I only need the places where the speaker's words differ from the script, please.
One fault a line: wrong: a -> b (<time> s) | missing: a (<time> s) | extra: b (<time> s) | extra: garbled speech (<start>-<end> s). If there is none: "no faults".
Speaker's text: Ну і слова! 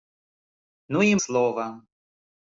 no faults